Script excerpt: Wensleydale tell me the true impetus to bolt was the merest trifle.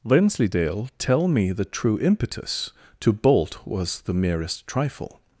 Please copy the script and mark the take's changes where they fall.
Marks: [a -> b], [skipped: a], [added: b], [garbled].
Wensleydale tell me the true impetus to bolt was the merest trifle.